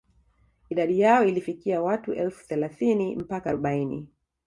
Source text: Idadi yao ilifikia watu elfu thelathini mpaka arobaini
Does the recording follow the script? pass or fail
pass